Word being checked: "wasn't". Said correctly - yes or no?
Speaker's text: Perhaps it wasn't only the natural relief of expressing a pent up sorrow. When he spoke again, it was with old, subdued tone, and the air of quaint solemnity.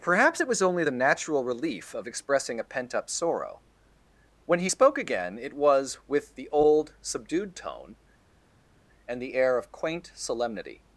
no